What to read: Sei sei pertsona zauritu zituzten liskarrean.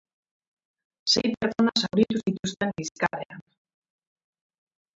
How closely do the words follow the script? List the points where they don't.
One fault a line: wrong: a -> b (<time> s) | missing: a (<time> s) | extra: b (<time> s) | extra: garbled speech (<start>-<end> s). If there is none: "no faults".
missing: sei (1.3 s)